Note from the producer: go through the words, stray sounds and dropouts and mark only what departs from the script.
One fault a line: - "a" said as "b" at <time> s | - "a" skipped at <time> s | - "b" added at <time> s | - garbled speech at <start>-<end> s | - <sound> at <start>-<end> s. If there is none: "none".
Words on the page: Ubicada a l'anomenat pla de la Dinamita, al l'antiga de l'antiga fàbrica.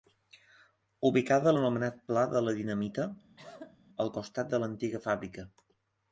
- cough at 3.4-3.8 s
- "l'antiga" said as "costat" at 4.2 s